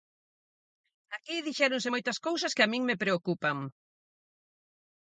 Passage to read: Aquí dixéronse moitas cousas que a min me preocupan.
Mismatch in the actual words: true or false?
false